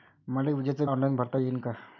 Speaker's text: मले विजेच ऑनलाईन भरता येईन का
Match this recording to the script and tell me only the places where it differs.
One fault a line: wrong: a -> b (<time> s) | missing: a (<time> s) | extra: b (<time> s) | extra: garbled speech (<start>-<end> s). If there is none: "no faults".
no faults